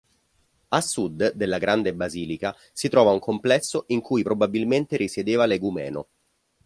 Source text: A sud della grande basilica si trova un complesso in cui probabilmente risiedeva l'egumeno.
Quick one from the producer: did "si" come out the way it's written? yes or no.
yes